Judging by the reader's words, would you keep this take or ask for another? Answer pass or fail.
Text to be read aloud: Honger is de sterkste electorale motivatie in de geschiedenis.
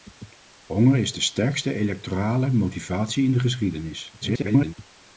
fail